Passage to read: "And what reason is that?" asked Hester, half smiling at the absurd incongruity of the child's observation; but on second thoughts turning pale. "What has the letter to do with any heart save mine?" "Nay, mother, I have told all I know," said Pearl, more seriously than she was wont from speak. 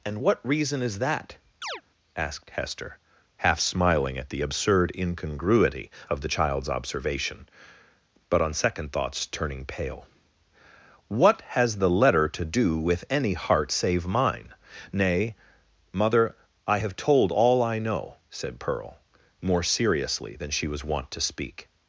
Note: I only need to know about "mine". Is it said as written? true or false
true